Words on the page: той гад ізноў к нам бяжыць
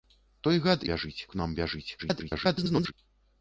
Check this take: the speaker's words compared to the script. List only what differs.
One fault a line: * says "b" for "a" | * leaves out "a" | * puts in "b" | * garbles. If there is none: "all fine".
* says "бяжыць" for "ізноў"
* garbles